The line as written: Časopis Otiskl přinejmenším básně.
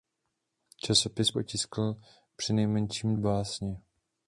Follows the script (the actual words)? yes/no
yes